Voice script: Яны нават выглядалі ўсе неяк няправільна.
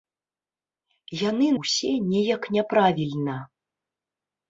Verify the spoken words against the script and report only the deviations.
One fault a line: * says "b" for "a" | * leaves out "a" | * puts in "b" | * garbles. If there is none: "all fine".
* leaves out "нават выглядалі"